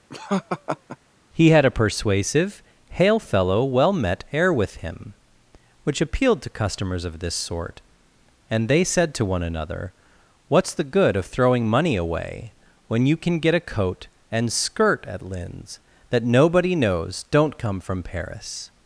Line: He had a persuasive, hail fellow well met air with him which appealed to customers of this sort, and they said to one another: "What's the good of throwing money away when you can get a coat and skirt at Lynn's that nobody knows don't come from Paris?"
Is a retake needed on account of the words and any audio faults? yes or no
yes